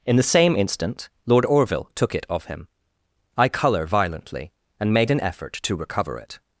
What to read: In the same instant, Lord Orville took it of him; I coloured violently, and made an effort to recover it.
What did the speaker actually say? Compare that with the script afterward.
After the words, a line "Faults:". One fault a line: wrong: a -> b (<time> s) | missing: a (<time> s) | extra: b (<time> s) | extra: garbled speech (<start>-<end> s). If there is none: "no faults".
In the same instant, Lord Orville took it of him; I colour violently, and made an effort to recover it.
Faults:
wrong: coloured -> colour (3.5 s)